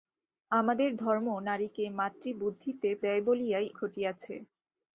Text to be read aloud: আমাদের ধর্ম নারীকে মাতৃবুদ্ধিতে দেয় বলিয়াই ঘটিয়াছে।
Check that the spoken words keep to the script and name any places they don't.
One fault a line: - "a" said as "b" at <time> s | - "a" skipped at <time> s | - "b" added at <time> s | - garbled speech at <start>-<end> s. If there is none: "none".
none